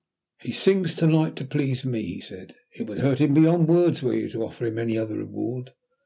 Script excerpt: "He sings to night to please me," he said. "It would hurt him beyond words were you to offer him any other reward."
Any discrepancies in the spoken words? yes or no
no